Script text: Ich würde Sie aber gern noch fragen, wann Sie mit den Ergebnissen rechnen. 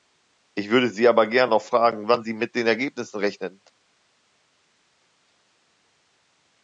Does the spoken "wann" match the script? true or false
true